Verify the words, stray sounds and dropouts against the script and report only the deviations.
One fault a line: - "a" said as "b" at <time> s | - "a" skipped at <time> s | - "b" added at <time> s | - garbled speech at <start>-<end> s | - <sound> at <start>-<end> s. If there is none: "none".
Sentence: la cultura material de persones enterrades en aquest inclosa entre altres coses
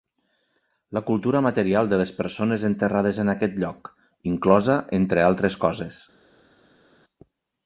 - "les" added at 2.0 s
- "lloc" added at 3.6 s